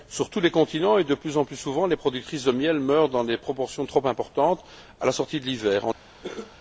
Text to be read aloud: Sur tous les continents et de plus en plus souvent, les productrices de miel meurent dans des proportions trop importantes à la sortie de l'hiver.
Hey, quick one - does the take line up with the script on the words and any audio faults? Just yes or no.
no